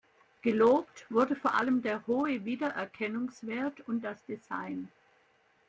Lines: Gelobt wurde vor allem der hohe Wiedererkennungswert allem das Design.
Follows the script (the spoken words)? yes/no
no